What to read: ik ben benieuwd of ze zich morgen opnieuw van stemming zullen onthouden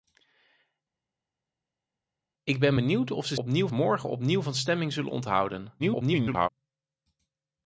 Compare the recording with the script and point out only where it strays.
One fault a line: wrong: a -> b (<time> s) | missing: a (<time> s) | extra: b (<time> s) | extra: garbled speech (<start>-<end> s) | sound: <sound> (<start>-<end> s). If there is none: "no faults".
wrong: zich -> opnieuw (3.3 s)
extra: garbled speech (5.8-6.5 s)